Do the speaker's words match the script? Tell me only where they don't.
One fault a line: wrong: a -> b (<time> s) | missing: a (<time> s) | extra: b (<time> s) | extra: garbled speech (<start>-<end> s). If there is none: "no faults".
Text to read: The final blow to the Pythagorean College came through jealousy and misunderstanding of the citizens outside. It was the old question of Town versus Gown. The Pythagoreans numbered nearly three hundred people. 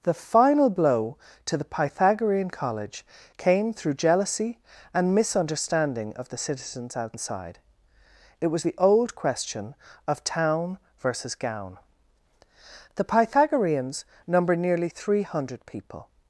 wrong: numbered -> number (14.3 s)